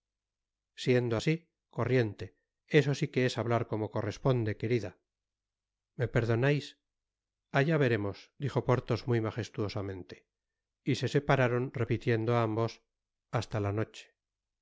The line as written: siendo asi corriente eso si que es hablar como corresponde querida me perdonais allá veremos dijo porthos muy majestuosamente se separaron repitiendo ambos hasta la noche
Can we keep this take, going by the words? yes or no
no